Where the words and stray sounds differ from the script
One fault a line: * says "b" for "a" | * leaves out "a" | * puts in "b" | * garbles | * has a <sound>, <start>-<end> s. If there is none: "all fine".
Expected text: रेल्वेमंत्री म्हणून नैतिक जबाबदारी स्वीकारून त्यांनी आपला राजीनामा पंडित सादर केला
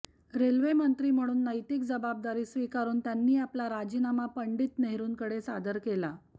* puts in "नेहरूंकडे"